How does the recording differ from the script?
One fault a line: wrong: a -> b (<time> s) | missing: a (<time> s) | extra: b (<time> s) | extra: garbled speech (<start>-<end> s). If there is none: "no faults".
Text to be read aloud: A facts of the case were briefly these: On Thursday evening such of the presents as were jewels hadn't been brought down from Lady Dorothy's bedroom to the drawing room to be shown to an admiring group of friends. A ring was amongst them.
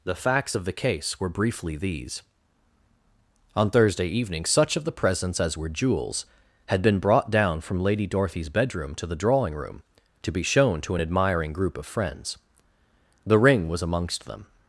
wrong: A -> The (0.0 s)
wrong: hadn't -> had (6.7 s)
wrong: A -> The (13.2 s)